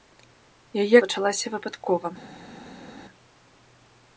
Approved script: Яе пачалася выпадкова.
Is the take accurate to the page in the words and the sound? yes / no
yes